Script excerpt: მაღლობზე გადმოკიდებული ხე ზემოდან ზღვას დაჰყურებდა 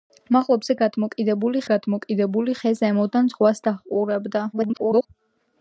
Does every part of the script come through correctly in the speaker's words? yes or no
no